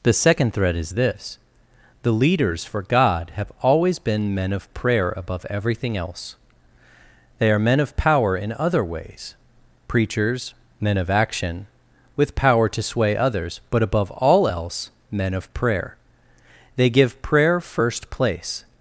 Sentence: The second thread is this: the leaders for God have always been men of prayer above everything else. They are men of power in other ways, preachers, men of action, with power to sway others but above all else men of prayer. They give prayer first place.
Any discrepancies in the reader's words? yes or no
no